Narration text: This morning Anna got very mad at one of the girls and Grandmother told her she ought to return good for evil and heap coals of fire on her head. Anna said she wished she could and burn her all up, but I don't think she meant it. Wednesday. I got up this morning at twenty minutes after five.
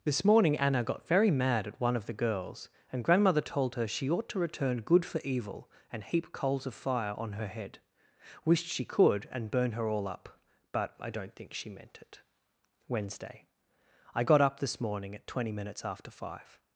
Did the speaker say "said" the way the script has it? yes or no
no